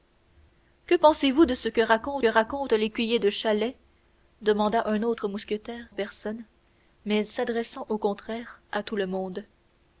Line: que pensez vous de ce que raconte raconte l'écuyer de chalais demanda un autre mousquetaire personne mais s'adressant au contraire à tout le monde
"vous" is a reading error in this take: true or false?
false